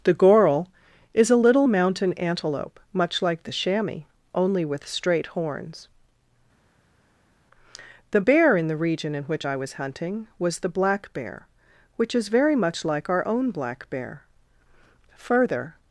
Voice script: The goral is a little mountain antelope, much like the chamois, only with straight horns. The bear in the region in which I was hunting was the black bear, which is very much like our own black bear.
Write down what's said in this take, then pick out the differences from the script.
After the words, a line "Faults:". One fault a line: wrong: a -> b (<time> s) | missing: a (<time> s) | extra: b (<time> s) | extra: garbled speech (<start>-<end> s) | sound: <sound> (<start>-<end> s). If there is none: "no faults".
The goral is a little mountain antelope, much like the chamois, only with straight horns. The bear in the region in which I was hunting was the black bear, which is very much like our own black bear. Further
Faults:
extra: Further (15.2 s)